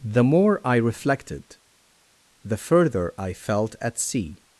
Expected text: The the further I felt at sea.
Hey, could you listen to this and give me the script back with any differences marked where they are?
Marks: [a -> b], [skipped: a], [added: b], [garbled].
The [added: more I reflected] the further I felt at sea.